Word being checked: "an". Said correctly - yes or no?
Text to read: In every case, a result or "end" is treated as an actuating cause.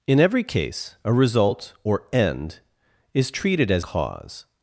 no